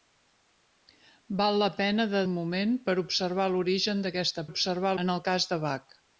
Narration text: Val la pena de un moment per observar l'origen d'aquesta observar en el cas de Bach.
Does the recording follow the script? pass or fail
pass